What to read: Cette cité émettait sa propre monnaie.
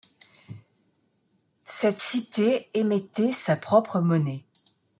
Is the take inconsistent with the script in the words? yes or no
no